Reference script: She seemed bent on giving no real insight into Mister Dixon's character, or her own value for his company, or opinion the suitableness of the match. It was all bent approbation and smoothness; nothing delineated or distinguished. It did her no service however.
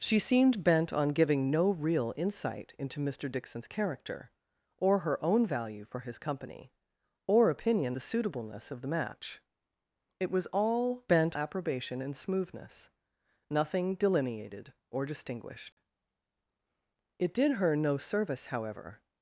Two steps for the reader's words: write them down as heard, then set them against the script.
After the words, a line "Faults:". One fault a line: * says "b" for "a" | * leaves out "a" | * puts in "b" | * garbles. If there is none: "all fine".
She seemed bent on giving no real insight into Mister Dixon's character, or her own value for his company, or opinion the suitableness of the match. It was all bent approbation and smoothness; nothing delineated or distinguished. It did her no service however.
Faults:
all fine